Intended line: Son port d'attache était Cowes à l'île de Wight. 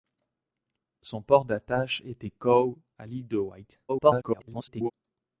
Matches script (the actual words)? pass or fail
fail